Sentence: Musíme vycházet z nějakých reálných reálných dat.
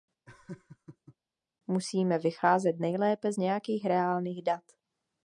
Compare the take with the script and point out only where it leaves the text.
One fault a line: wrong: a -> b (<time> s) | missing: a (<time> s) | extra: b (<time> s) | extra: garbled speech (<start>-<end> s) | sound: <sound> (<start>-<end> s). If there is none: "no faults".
sound: laugh (0.3-1.2 s)
extra: nejlépe (2.8 s)
missing: reálných (4.4 s)